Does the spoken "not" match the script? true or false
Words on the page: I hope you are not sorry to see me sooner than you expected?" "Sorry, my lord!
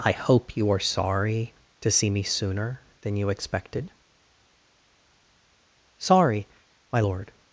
false